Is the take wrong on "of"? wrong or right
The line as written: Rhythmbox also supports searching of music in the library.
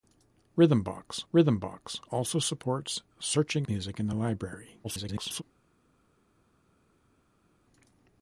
wrong